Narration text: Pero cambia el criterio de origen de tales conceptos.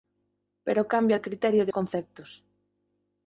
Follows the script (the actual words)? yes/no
no